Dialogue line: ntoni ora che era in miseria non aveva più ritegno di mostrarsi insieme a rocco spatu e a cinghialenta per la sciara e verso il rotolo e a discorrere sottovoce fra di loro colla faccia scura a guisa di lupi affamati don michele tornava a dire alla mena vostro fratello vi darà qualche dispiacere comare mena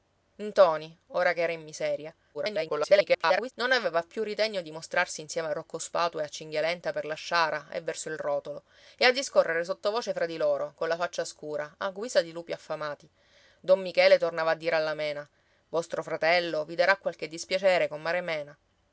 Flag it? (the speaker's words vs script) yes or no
yes